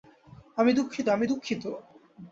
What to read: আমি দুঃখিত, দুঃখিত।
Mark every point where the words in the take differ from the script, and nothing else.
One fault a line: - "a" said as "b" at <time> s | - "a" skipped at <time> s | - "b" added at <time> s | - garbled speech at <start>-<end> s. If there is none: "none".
- "আমি" added at 1.1 s